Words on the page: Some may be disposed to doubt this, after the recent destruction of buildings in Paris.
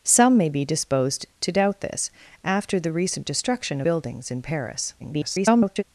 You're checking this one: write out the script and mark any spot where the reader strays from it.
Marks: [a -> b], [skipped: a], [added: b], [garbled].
Some may be disposed to doubt this, after the recent destruction [skipped: of] buildings in Paris. [garbled]